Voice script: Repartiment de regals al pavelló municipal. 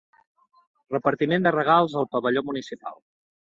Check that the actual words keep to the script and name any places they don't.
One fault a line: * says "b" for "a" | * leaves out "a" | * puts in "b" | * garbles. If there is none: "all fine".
all fine